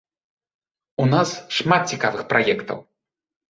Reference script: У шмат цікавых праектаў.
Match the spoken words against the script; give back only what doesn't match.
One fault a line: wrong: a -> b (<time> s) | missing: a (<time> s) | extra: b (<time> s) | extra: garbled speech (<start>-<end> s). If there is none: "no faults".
extra: нас (1.1 s)